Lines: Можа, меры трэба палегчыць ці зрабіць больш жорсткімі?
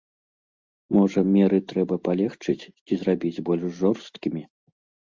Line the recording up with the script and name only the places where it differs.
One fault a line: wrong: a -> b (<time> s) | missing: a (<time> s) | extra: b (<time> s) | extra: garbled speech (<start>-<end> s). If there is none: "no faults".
no faults